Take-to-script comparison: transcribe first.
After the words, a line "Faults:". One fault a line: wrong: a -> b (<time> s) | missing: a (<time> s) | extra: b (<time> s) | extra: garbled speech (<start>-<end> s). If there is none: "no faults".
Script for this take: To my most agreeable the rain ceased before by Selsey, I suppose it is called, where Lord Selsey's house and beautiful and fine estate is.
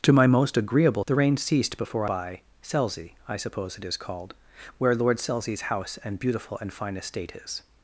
To my most agreeable the rain ceased before by Selsey, I suppose it is called, where Lord Selsey's house and beautiful and fine estate is.
Faults:
no faults